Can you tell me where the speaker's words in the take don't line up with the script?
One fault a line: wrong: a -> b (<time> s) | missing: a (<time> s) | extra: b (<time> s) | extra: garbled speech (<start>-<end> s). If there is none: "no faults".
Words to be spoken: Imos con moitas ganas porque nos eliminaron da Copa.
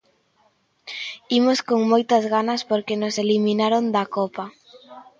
no faults